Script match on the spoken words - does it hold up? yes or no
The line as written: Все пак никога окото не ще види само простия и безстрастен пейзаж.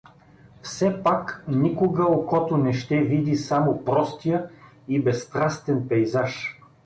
yes